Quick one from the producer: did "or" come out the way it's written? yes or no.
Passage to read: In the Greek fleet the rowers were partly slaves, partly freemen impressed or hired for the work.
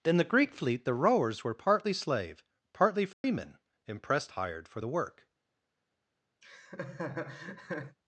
no